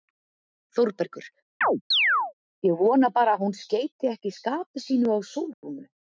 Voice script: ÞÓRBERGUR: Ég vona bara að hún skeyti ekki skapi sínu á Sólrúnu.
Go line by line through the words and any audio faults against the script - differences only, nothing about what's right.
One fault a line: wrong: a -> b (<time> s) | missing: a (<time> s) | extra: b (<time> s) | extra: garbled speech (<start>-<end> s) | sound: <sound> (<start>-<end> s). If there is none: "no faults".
sound: chirp (1.6-2.3 s)
sound: dropout (5.5-5.6 s)